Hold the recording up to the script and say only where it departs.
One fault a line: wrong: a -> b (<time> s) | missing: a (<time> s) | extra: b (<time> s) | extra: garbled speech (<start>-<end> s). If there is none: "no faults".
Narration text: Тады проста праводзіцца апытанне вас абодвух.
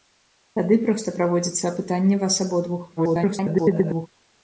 extra: garbled speech (3.0-4.1 s)